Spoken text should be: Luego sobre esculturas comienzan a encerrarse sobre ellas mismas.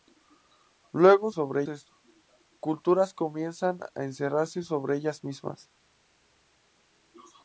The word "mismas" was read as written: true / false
true